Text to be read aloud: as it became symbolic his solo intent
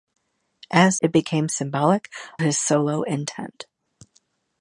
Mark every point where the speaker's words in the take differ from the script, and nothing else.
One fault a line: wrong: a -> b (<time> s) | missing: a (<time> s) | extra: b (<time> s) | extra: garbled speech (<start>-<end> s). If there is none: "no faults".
no faults